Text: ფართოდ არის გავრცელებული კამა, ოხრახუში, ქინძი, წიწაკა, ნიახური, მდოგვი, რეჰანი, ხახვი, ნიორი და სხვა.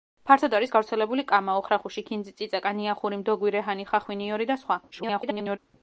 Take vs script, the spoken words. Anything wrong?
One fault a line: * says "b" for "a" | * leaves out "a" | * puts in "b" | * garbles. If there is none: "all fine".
* garbles